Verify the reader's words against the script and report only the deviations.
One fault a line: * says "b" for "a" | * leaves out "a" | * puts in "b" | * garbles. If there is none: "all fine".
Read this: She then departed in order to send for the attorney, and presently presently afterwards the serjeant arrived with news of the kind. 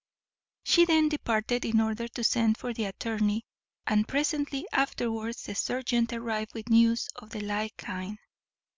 * leaves out "presently"
* puts in "like"